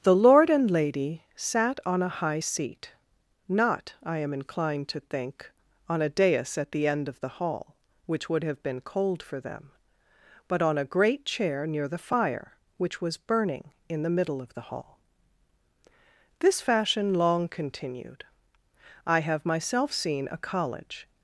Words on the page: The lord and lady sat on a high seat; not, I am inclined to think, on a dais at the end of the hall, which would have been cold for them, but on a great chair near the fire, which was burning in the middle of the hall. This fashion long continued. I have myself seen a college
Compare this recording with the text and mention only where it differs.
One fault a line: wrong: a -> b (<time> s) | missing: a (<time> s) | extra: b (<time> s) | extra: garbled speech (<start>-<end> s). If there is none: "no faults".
no faults